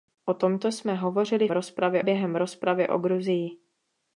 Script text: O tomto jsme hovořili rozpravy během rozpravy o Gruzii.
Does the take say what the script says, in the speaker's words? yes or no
yes